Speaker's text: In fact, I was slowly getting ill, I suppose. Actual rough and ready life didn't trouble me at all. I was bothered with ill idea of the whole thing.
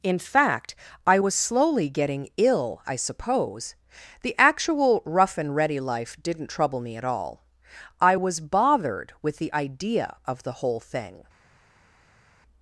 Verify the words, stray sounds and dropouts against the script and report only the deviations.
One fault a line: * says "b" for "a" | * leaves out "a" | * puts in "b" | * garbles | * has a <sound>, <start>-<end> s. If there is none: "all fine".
* puts in "The"
* says "the" for "ill"